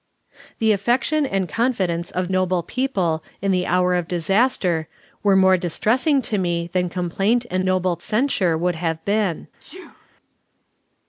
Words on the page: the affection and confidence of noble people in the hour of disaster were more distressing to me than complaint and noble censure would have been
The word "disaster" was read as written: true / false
true